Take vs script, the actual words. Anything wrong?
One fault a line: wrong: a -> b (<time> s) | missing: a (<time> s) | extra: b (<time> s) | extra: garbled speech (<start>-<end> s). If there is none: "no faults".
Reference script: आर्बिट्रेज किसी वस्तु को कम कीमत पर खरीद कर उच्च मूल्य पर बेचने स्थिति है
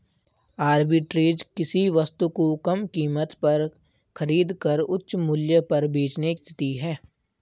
no faults